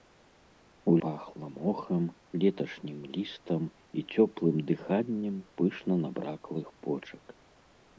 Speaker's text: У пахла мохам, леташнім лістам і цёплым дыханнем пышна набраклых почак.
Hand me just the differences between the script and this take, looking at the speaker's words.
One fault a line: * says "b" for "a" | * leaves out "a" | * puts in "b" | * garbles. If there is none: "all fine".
all fine